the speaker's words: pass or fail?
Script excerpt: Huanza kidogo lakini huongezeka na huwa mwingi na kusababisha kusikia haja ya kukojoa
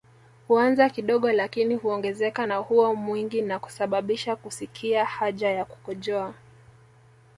pass